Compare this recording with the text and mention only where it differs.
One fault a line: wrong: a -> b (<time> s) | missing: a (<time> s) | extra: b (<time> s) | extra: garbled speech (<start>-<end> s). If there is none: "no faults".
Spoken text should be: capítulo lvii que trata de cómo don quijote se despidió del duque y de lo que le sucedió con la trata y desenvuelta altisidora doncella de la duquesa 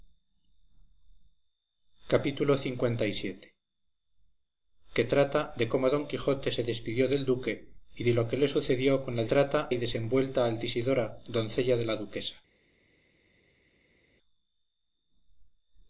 no faults